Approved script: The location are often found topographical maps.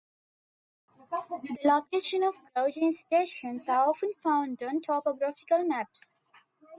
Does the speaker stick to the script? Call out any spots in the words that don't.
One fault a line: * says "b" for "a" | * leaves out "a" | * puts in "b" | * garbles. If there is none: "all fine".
* puts in "of gauging stations"
* puts in "on"